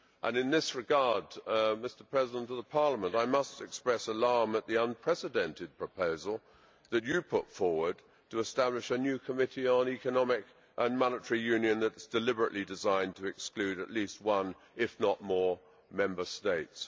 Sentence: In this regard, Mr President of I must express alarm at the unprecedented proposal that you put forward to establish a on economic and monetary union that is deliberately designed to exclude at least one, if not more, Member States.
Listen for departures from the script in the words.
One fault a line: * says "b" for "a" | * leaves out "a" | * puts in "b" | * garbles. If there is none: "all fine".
* puts in "Parliament"
* puts in "new committee"